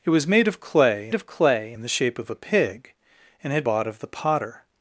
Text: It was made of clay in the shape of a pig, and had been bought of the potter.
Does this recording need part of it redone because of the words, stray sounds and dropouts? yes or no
yes